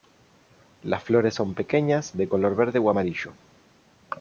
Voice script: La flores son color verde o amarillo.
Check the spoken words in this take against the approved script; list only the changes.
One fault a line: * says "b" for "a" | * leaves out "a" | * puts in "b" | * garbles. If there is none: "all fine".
* says "Las" for "La"
* puts in "pequeñas de"